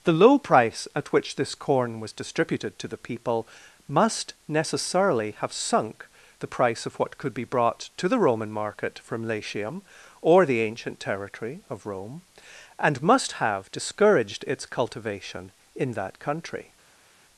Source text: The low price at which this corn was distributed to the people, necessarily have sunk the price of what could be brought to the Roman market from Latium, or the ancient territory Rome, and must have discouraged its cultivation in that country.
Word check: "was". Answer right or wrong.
right